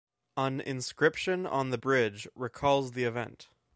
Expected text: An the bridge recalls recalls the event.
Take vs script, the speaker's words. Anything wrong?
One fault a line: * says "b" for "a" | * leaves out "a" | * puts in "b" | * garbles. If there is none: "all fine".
* puts in "inscription on"
* leaves out "recalls"